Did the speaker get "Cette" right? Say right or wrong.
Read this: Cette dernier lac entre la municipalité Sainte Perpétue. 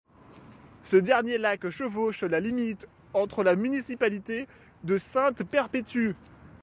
wrong